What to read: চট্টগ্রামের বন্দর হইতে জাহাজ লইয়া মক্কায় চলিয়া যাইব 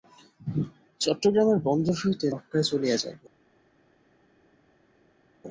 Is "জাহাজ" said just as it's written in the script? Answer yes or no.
no